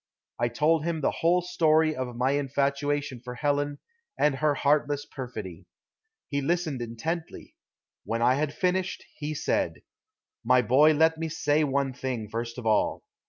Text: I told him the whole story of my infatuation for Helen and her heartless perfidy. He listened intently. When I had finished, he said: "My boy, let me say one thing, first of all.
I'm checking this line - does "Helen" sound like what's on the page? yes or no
yes